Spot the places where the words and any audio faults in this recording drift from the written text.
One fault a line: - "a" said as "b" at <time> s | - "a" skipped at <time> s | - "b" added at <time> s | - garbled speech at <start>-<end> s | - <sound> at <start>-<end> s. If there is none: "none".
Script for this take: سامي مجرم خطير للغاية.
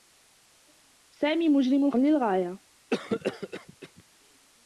- "خطير" skipped at 1.9 s
- cough at 2.9-4.0 s